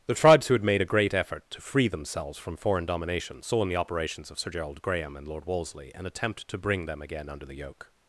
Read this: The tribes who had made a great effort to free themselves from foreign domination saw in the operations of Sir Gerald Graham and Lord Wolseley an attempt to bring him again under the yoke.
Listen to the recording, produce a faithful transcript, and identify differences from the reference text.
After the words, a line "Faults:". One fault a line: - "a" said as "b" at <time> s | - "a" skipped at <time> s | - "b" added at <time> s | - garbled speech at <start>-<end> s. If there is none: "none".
The tribes who had made a great effort to free themselves from foreign domination saw in the operations of Sir Gerald Graham and Lord Wolseley an attempt to bring them again under the yoke.
Faults:
- "him" said as "them" at 6.9 s